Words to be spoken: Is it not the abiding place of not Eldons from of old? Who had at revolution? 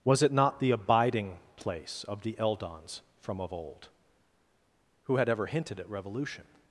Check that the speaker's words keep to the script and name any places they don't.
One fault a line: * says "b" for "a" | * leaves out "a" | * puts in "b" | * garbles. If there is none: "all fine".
* says "Was" for "Is"
* says "the" for "not"
* puts in "ever hinted"